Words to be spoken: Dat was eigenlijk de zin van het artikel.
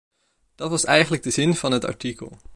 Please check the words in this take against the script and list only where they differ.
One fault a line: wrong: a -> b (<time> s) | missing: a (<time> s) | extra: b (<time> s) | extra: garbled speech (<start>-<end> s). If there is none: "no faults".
no faults